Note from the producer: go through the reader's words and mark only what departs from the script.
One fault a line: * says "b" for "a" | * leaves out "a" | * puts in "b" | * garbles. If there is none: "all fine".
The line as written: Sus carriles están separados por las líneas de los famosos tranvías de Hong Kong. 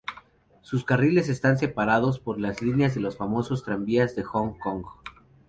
all fine